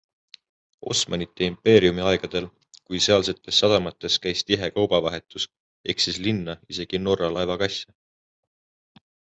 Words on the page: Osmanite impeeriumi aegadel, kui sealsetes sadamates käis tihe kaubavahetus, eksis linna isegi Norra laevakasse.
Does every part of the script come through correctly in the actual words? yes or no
yes